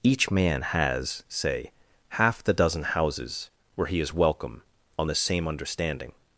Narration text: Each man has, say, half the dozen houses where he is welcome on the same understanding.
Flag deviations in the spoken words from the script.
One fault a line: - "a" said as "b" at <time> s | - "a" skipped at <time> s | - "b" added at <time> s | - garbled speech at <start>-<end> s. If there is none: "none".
none